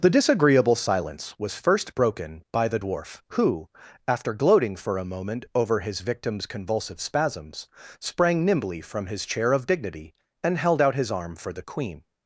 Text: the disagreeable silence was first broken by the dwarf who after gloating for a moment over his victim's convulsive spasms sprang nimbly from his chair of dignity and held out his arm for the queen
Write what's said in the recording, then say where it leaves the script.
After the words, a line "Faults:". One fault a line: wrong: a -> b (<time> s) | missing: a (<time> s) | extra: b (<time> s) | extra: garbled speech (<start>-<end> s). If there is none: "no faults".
the disagreeable silence was first broken by the dwarf who after gloating for a moment over his victim's convulsive spasms sprang nimbly from his chair of dignity and held out his arm for the queen
Faults:
no faults